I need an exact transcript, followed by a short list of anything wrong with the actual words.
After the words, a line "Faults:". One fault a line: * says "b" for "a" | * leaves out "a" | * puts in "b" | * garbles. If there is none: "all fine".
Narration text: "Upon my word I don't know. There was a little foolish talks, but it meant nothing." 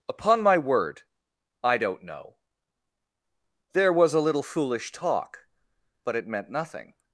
"Upon my word I don't know. There was a little foolish talk, but it meant nothing."
Faults:
* says "talk" for "talks"